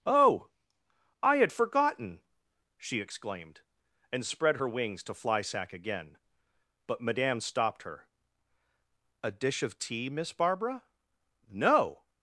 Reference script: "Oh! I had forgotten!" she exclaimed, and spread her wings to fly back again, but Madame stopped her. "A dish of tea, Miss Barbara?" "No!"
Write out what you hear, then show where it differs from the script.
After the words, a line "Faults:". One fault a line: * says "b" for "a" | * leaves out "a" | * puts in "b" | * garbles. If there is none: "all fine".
"Oh! I had forgotten!" she exclaimed, and spread her wings to fly sack again, but Madame stopped her. "A dish of tea, Miss Barbara?" "No!"
Faults:
* says "sack" for "back"